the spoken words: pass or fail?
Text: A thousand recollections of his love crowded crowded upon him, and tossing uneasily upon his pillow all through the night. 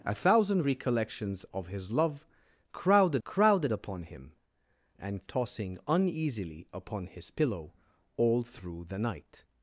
pass